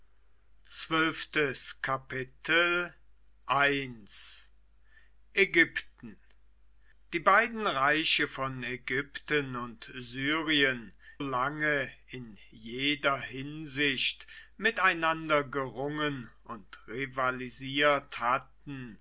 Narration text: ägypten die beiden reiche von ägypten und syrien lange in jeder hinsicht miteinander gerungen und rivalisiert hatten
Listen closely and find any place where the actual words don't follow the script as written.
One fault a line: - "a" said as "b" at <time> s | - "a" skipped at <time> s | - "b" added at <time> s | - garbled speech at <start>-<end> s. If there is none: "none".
none